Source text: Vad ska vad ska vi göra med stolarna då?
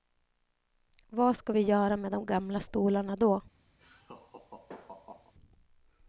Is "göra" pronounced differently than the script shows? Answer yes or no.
no